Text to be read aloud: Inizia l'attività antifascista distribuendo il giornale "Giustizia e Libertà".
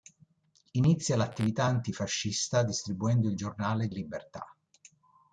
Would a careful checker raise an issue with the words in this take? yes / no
yes